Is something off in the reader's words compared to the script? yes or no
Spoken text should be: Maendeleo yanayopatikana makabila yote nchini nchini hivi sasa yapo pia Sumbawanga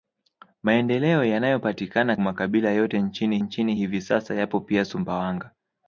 no